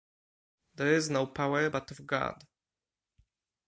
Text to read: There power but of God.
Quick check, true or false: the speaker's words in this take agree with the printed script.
false